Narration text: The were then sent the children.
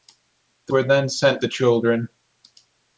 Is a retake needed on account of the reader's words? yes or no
no